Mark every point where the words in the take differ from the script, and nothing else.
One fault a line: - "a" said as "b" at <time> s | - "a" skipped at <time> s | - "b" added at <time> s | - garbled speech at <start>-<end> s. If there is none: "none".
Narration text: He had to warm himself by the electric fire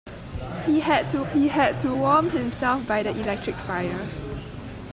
- "he had to" added at 1.3 s